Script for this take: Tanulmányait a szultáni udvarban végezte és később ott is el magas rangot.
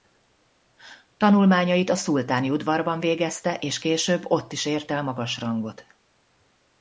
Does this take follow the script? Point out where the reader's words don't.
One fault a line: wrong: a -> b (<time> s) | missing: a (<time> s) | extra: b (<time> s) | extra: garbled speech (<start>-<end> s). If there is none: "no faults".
extra: ért (4.7 s)